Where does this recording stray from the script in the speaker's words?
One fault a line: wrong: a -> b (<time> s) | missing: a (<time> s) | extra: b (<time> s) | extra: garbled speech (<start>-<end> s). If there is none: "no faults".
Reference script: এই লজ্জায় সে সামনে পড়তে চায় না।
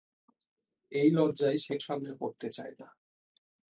no faults